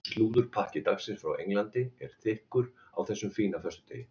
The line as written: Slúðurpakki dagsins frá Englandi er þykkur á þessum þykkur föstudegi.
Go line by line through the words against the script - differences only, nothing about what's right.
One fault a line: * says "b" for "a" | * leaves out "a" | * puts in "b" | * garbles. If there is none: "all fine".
* says "fína" for "þykkur"